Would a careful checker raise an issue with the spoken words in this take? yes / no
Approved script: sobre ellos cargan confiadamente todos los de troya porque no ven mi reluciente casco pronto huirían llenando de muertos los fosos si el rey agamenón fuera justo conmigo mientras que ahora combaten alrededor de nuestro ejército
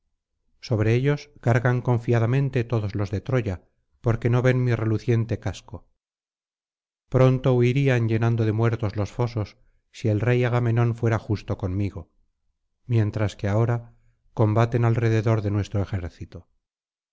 no